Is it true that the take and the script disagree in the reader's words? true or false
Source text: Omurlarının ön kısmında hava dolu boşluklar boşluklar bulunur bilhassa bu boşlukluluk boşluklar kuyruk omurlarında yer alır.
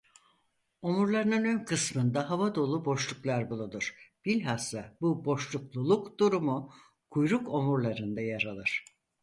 true